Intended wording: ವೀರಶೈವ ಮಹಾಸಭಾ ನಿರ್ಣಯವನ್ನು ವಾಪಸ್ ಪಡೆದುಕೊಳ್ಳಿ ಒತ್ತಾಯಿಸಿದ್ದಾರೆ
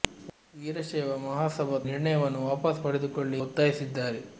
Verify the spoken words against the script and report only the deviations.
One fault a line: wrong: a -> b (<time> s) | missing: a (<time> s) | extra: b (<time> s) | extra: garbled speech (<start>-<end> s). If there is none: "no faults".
no faults